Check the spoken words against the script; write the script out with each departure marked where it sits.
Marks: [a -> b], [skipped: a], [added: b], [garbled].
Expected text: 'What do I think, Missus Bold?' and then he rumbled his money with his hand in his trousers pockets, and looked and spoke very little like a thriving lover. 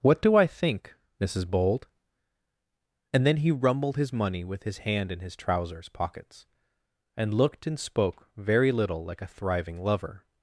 'What do I think, Missus Bold?' and then he rumbled his money with his hand in his trousers pockets, and looked and spoke very little like a thriving lover.